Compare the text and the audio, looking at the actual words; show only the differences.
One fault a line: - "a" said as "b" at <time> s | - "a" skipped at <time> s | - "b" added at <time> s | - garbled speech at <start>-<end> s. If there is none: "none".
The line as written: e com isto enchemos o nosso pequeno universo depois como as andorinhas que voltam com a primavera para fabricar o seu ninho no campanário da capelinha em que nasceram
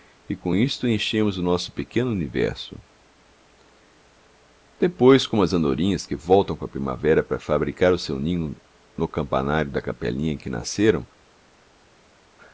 none